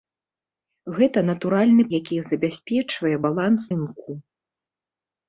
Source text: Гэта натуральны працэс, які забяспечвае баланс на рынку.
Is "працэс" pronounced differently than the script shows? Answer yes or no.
yes